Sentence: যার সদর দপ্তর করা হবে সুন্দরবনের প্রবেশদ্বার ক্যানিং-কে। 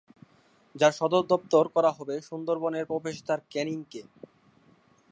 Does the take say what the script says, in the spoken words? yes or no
yes